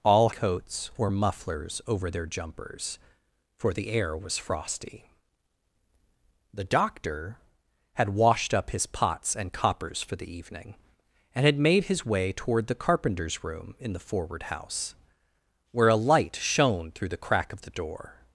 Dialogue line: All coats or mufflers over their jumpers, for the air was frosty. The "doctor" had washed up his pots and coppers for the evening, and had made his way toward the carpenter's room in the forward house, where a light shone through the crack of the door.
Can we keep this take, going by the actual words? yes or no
yes